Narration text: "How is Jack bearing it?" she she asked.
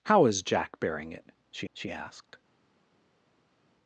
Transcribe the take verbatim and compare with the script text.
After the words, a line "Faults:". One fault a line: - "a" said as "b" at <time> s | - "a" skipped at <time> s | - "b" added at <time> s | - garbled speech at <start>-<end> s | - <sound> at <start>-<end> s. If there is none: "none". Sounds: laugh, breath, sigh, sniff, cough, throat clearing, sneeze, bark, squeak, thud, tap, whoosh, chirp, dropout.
"How is Jack bearing it?" she she asked.
Faults:
none